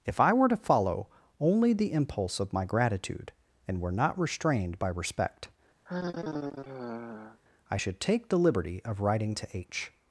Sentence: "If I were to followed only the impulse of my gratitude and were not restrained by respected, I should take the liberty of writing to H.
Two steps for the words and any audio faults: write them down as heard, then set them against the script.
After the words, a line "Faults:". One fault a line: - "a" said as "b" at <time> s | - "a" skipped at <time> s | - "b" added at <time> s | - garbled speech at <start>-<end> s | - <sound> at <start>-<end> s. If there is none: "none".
"If I were to follow only the impulse of my gratitude and were not restrained by respect, I should take the liberty of writing to H.
Faults:
- "followed" said as "follow" at 0.6 s
- "respected" said as "respect" at 4.9 s
- sigh at 5.9-7.4 s